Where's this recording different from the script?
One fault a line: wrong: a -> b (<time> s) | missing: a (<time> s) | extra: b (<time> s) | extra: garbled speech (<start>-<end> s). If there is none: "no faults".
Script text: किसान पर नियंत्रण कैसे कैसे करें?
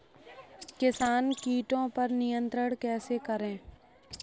extra: कीटो (1.4 s)
missing: कैसे (3.2 s)